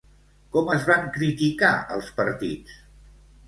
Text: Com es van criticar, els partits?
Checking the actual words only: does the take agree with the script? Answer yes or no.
yes